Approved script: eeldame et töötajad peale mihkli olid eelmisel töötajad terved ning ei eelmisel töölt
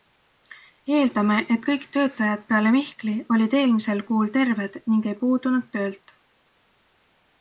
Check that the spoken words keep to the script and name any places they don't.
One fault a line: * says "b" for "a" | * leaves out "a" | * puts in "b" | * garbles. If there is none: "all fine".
* puts in "kõik"
* says "kuul" for "töötajad"
* says "puudunud" for "eelmisel"